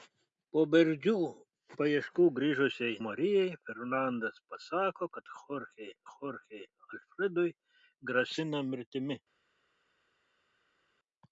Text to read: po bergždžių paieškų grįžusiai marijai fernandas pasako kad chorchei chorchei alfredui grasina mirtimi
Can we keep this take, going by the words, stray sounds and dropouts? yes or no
yes